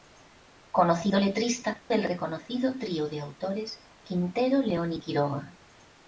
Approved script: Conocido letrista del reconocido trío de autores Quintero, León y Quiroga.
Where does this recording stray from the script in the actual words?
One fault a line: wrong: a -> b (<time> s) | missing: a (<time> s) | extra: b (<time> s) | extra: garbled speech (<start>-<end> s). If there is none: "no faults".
no faults